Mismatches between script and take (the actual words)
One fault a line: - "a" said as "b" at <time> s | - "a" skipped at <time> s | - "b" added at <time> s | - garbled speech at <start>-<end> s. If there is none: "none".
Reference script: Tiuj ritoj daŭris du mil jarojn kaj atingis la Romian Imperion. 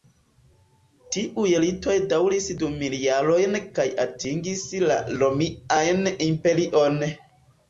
none